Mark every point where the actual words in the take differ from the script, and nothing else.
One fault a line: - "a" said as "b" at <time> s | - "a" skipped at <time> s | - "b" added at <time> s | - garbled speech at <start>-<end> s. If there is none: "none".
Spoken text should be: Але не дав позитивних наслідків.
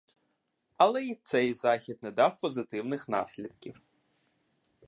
- "й цей захід" added at 1.0 s